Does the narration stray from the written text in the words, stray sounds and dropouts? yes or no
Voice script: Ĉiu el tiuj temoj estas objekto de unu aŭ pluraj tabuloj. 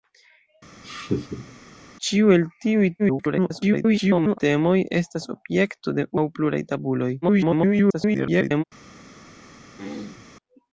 yes